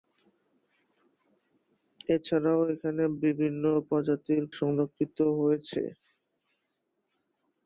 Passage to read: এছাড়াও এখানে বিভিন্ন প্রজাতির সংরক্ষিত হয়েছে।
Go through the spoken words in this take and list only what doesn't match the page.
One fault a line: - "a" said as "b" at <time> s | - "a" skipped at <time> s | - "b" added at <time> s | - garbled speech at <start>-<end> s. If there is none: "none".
none